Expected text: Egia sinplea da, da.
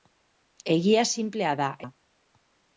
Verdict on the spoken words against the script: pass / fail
pass